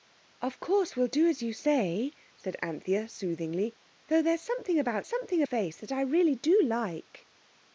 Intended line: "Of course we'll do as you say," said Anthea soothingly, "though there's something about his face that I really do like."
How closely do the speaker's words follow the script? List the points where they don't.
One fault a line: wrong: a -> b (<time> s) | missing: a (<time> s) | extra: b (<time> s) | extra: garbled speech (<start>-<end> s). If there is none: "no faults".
wrong: his -> something (5.0 s)